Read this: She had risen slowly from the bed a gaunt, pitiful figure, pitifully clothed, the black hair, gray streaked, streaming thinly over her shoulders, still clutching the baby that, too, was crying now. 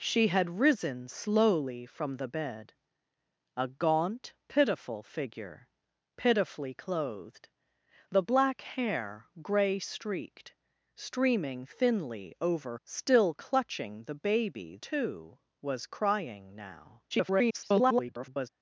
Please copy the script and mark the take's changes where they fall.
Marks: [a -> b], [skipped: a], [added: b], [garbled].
She had risen slowly from the bed a gaunt, pitiful figure, pitifully clothed, the black hair, gray streaked, streaming thinly over [skipped: her shoulders,] still clutching the baby [skipped: that,] too, was crying now. [garbled]